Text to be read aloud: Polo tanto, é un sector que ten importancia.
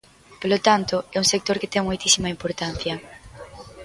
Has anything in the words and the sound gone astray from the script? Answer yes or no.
yes